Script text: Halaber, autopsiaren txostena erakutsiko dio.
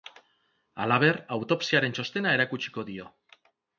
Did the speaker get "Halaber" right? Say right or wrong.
right